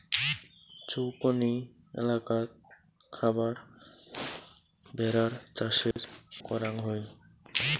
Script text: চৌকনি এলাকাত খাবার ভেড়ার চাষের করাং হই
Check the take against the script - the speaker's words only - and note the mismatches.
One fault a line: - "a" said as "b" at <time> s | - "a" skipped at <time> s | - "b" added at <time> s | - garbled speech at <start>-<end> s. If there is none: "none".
none